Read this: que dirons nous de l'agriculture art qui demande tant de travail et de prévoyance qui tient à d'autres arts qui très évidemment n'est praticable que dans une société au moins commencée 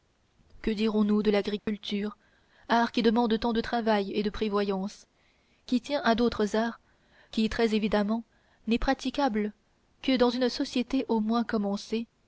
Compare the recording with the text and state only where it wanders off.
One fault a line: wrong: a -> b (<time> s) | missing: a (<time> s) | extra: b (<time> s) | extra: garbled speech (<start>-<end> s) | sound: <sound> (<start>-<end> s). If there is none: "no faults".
sound: dropout (1.6-1.7 s)